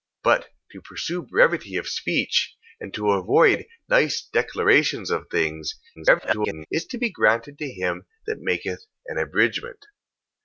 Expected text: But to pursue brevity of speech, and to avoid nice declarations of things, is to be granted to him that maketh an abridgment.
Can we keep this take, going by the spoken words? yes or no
no